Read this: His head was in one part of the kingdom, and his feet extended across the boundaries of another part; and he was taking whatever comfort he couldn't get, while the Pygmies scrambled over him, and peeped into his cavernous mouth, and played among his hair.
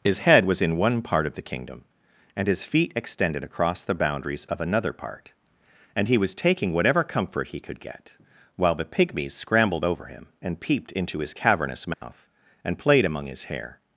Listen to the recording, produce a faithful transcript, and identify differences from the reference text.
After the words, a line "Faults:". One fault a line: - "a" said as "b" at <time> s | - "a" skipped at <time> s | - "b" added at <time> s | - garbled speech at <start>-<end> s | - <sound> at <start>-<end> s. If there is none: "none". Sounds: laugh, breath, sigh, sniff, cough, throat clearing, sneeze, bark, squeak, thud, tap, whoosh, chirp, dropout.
His head was in one part of the kingdom, and his feet extended across the boundaries of another part; and he was taking whatever comfort he could get, while the Pygmies scrambled over him, and peeped into his cavernous mouth, and played among his hair.
Faults:
- "couldn't" said as "could" at 7.6 s
- dropout at 11.9-12.0 s